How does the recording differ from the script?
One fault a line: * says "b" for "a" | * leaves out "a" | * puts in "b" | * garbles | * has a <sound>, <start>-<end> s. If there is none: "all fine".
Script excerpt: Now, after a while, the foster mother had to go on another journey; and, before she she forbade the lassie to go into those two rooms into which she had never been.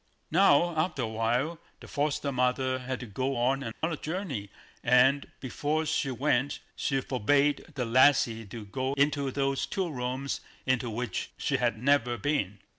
* has a dropout, 3.7-3.8 s
* puts in "went"